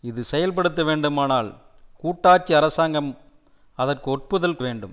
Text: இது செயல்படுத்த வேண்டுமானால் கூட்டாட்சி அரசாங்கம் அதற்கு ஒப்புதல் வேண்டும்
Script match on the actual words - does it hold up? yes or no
yes